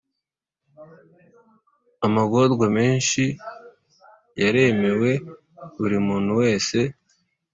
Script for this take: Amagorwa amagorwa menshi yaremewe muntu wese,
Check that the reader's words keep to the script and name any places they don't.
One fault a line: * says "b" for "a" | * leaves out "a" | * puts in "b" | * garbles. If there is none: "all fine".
* leaves out "amagorwa"
* puts in "buri"